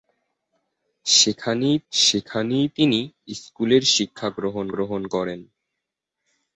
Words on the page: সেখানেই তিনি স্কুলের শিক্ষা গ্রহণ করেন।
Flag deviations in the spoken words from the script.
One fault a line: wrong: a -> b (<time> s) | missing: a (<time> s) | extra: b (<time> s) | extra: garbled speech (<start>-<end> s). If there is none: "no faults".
extra: সেখানেই (1.9 s)
extra: গ্রহণ (4.7 s)